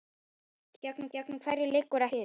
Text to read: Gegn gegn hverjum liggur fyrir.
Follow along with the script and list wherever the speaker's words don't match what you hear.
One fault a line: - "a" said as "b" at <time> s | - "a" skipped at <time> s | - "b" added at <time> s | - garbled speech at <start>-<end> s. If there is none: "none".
none